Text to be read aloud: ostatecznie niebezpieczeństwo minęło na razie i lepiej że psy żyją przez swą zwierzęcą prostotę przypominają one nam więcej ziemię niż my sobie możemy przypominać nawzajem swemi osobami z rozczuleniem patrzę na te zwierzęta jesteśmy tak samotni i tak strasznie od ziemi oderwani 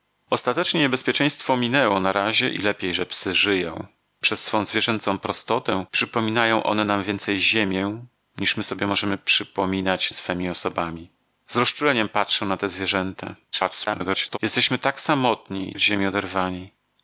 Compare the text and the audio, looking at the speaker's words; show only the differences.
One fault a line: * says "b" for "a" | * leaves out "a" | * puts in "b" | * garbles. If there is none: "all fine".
* leaves out "nawzajem"
* garbles
* leaves out "tak strasznie"